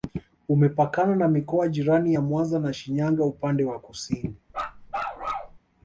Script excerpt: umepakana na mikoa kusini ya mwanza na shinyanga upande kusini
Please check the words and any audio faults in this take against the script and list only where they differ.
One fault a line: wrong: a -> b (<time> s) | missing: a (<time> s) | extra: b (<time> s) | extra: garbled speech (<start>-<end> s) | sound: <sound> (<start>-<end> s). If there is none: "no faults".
wrong: kusini -> jirani (1.7 s)
extra: wa (3.6 s)
sound: bark (4.5-5.6 s)